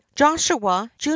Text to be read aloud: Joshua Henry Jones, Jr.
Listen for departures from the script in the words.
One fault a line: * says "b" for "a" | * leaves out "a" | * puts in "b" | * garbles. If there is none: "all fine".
* leaves out "Henry Jones"